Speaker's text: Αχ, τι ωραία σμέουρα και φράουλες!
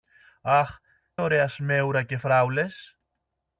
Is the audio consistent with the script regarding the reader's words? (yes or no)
no